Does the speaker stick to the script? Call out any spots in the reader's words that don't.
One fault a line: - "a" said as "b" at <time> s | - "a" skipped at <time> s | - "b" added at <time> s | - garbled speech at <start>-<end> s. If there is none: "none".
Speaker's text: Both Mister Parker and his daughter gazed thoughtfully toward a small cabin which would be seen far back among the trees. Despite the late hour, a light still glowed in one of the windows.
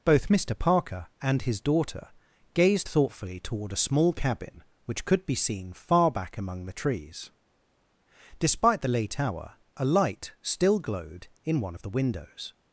- "would" said as "could" at 5.0 s